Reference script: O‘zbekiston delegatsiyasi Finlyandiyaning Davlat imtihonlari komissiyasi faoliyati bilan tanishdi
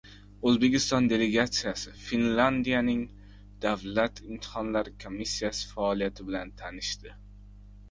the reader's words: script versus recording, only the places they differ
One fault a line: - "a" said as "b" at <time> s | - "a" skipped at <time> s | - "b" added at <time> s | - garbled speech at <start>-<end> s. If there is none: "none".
none